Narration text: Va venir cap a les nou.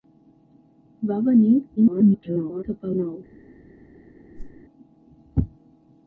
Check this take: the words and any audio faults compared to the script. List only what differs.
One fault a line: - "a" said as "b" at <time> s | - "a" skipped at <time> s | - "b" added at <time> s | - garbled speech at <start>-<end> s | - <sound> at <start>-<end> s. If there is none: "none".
- garbled speech at 1.8-2.6 s
- "les" skipped at 2.9 s
- whoosh at 4.3-4.6 s